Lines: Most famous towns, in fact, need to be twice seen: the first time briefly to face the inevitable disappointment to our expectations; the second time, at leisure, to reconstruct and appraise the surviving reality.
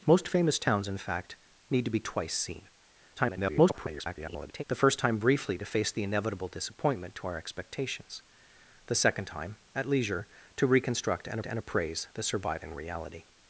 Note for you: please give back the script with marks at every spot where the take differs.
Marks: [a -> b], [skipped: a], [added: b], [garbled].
Most famous towns, in fact, need to be twice seen: [garbled] the first time briefly to face the inevitable disappointment to our expectations; the second time, at leisure, to reconstruct and [added: and] appraise the surviving reality.